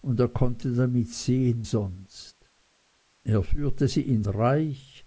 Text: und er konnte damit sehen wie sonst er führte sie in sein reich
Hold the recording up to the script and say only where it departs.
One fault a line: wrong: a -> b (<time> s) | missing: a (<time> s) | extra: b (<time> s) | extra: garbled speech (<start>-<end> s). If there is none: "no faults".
missing: wie (1.7 s)
missing: sein (4.2 s)